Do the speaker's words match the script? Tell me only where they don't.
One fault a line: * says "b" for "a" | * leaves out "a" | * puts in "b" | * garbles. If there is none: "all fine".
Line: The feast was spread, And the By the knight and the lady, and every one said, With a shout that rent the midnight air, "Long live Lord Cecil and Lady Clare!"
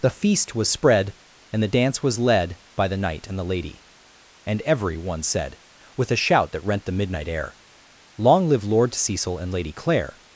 * puts in "dance was led"